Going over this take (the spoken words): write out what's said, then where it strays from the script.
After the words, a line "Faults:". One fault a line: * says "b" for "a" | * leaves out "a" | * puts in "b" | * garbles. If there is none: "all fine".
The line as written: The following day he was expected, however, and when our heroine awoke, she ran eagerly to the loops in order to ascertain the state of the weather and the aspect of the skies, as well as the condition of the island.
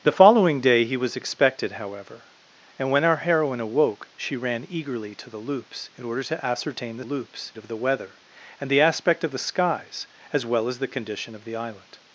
The following day he was expected, however, and when our heroine awoke, she ran eagerly to the loops in order to ascertain the loops of the weather and the aspect of the skies, as well as the condition of the island.
Faults:
* says "loops" for "state"